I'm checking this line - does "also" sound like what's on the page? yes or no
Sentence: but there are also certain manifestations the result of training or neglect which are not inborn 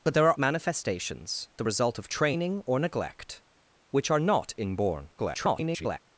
no